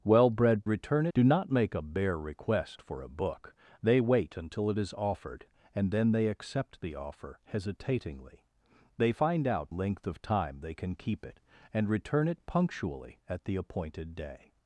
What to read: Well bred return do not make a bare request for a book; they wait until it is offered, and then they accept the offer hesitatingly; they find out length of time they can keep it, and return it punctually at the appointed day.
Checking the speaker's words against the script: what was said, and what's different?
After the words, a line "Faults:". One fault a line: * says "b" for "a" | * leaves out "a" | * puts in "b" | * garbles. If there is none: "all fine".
Well bred return do not make a bare request for a book; they wait until it is offered, and then they accept the offer hesitatingly; they find out length of time they can keep it, and return it punctually at the appointed day.
Faults:
all fine